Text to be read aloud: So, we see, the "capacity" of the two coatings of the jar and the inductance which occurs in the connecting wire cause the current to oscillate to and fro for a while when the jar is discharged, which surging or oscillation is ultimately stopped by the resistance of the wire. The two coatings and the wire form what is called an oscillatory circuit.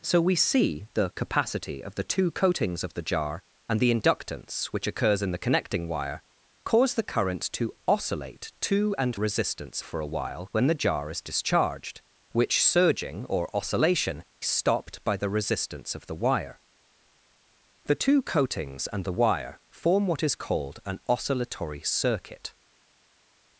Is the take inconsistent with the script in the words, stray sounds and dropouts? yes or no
yes